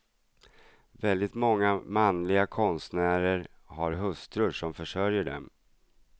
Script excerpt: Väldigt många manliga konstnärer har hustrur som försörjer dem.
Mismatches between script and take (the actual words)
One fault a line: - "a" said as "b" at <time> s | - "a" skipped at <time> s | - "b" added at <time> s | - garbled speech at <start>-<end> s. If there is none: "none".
none